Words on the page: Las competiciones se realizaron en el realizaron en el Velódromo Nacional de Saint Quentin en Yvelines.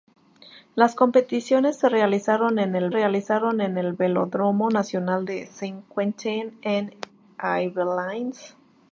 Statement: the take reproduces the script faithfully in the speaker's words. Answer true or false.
true